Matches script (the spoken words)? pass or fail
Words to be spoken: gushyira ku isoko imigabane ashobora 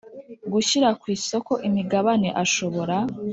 pass